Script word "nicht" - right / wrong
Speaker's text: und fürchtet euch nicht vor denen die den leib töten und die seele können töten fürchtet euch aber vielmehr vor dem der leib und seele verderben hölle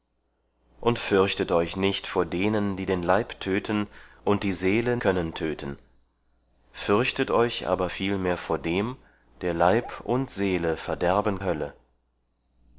right